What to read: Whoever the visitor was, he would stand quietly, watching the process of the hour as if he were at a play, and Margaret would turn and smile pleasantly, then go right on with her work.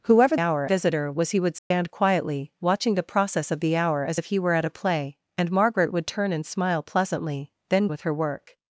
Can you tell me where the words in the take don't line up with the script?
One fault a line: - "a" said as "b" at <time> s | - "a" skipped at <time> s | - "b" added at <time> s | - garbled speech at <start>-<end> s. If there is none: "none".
- "the" said as "hour" at 0.4 s
- "go right on" skipped at 7.9 s